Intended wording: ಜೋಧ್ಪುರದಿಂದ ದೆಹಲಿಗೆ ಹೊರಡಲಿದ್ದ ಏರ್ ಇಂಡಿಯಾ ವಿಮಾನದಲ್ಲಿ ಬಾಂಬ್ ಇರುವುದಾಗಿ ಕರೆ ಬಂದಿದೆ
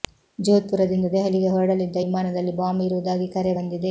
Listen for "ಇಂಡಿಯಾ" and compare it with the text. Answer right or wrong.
wrong